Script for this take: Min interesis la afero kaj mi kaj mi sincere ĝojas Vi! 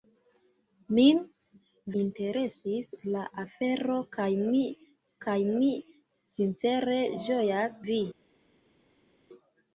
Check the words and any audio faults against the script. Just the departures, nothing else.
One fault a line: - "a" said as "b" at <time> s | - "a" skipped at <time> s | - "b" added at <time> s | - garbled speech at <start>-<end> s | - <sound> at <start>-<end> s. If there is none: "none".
none